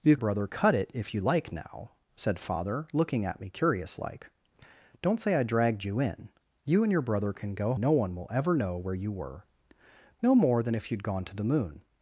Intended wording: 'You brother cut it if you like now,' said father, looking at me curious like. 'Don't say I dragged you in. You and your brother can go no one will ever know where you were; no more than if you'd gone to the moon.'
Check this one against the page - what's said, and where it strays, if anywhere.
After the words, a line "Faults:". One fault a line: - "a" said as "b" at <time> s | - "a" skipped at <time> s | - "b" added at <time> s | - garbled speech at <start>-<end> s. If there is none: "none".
'You brother cut it if you like now,' said father, looking at me curious like. 'Don't say I dragged you in. You and your brother can go no one will ever know where you were; no more than if you'd gone to the moon.'
Faults:
none